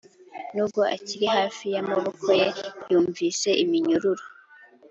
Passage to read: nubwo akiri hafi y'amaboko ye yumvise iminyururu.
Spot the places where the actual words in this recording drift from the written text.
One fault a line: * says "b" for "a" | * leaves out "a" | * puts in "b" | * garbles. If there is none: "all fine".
all fine